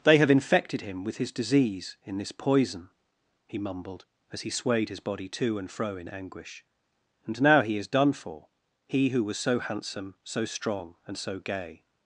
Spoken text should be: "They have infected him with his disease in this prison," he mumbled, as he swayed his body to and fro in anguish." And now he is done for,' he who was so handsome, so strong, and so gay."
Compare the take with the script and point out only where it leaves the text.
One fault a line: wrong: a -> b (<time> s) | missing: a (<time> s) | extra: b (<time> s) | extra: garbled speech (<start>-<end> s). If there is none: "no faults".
wrong: prison -> poison (2.3 s)